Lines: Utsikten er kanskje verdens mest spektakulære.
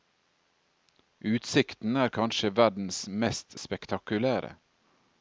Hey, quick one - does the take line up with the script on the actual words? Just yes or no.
yes